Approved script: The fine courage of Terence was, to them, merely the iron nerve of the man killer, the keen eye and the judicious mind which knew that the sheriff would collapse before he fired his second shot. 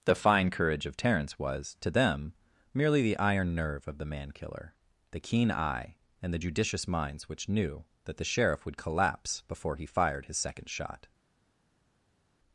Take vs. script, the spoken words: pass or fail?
fail